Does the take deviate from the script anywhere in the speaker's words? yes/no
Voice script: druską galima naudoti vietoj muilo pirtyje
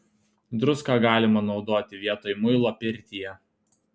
no